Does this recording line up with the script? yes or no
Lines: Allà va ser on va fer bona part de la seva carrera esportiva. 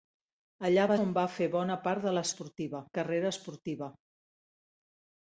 no